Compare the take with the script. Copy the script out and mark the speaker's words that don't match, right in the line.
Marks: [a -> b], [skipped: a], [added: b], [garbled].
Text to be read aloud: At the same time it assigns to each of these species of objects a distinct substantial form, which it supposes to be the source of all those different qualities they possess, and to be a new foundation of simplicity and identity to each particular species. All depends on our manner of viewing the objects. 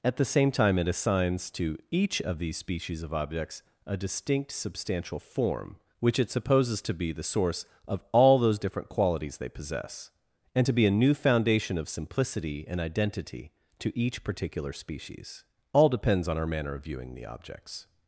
At the same time it assigns to each of these species of objects a distinct substantial form, which it supposes to be the source of all those different qualities they possess, and to be a new foundation of simplicity and identity to each particular species. All depends on our manner of viewing the objects.